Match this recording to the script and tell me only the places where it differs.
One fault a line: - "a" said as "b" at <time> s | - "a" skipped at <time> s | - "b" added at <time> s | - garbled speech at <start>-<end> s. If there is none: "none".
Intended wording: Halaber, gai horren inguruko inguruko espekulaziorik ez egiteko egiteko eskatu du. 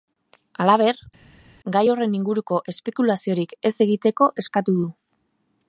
- "inguruko" skipped at 2.6 s
- "egiteko" skipped at 4.3 s